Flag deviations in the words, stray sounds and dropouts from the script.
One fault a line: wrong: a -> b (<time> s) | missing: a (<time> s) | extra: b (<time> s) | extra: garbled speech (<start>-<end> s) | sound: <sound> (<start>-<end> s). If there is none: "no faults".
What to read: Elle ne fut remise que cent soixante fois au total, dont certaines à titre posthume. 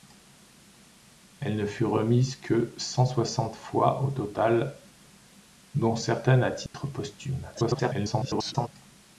sound: dropout (6.7-6.7 s)
extra: garbled speech (7.5-8.7 s)